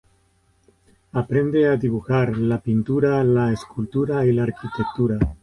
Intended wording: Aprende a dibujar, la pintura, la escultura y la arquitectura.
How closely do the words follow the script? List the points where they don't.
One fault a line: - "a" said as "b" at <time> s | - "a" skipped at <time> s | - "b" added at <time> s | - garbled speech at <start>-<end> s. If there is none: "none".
none